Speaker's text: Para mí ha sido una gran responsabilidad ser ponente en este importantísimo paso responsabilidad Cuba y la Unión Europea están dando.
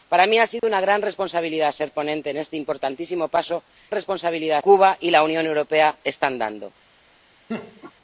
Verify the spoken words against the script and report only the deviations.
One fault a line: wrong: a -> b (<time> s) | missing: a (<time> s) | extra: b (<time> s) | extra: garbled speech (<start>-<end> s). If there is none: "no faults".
no faults